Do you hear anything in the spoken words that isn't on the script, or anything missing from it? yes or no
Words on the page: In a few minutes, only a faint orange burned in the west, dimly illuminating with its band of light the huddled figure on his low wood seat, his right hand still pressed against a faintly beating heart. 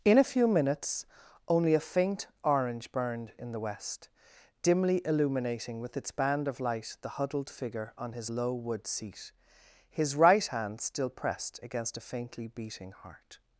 no